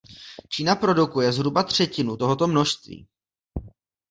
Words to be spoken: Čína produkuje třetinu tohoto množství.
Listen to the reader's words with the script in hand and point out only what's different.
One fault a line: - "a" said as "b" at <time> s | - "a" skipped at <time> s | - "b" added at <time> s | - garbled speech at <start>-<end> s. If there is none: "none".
- "zhruba" added at 1.3 s